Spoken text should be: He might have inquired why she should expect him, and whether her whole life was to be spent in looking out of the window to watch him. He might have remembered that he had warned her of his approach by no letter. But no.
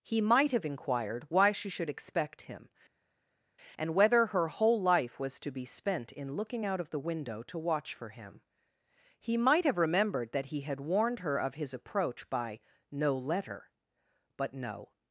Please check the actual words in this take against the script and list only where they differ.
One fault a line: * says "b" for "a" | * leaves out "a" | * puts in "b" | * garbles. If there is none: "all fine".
* puts in "for"